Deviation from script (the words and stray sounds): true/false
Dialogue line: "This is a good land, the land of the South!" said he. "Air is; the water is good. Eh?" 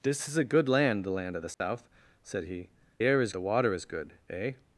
true